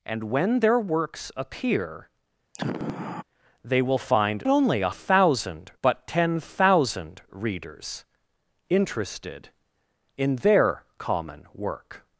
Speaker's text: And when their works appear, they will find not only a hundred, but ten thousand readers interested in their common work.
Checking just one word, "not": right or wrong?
wrong